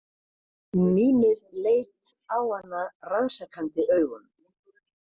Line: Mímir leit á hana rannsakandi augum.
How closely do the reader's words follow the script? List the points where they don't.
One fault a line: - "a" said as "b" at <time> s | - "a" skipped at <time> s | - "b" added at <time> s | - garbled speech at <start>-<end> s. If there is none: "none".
none